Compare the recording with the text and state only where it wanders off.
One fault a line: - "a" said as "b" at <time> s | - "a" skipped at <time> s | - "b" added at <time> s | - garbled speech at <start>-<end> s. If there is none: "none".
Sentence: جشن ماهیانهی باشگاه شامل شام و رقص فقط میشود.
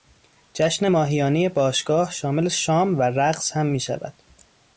- "فقط" said as "هم" at 3.5 s